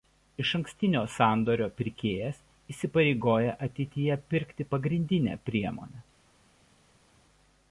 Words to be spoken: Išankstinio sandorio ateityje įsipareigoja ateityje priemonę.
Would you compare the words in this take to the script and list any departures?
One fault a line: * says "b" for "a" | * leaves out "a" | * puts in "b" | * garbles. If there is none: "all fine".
* says "pirkėjas" for "ateityje"
* puts in "pirkti pagrindinę"